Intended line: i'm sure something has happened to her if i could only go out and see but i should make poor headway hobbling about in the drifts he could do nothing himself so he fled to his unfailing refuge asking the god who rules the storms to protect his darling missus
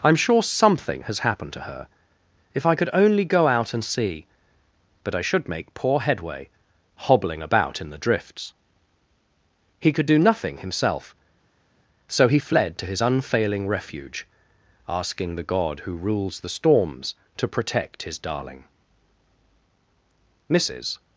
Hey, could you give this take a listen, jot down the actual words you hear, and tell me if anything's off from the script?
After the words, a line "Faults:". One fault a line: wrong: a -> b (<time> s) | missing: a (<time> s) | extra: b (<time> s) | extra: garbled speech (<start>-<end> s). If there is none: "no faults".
i'm sure something has happened to her if i could only go out and see but i should make poor headway hobbling about in the drifts he could do nothing himself so he fled to his unfailing refuge asking the god who rules the storms to protect his darling missus
Faults:
no faults